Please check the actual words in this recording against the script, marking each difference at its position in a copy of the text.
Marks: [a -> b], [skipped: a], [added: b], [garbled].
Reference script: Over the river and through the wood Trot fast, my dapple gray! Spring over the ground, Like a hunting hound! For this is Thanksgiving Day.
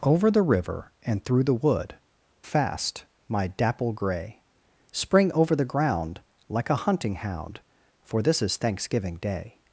Over the river and through the wood [skipped: Trot] fast, my dapple gray! Spring over the ground, Like a hunting hound! For this is Thanksgiving Day.